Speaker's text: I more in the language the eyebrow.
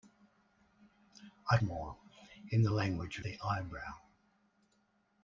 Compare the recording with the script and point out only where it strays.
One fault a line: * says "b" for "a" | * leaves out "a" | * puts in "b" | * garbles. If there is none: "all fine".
all fine